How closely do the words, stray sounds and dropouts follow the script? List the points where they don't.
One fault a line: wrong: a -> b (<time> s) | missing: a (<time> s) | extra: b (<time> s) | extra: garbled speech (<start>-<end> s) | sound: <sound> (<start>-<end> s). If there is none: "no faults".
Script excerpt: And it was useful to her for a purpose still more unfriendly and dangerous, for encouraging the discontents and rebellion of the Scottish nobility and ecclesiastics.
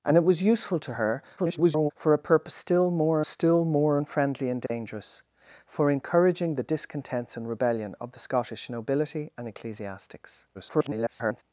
extra: garbled speech (1.4-1.9 s)
extra: still more (3.3 s)
sound: dropout (4.7-4.7 s)
extra: garbled speech (10.5-11.4 s)